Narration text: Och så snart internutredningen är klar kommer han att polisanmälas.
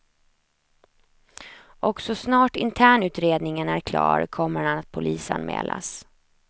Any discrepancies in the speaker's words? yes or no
no